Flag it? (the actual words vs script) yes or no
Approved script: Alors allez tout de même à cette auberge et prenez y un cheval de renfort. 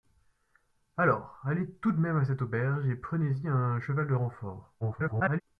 yes